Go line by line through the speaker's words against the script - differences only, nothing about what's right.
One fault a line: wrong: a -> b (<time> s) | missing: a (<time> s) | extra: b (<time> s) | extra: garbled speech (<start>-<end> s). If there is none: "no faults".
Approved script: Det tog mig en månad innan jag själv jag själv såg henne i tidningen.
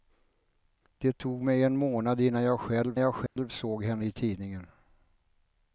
no faults